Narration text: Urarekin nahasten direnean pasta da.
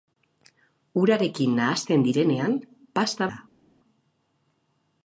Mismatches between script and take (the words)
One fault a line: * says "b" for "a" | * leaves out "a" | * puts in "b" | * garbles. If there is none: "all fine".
all fine